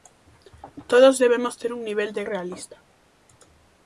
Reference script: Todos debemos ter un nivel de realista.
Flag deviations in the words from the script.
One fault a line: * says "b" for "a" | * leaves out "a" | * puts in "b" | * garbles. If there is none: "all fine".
all fine